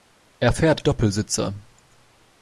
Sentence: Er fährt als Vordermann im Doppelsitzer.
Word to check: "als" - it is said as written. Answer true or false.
false